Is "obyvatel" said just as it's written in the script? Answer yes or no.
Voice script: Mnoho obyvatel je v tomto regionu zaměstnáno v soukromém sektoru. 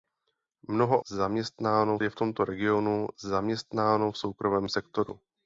no